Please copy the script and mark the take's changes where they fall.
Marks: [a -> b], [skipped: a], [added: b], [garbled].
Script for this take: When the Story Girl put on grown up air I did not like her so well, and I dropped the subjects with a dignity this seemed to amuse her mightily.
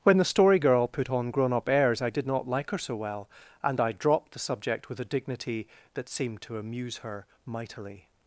When the Story Girl put on grown up [air -> airs] I did not like her so well, and I dropped the [subjects -> subject] with a dignity [this -> that] seemed to amuse her mightily.